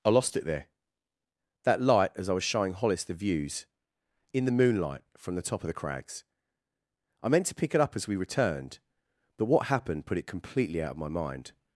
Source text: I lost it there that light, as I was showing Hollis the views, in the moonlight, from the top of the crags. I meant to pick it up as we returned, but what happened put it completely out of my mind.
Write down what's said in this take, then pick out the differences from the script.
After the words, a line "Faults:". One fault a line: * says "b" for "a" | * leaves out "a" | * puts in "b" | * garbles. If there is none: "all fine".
I lost it there that light, as I was showing Hollis the views, in the moonlight, from the top of the crags. I meant to pick it up as we returned, but what happened put it completely out of my mind.
Faults:
all fine